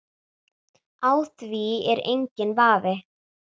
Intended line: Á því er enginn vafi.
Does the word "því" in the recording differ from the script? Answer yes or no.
no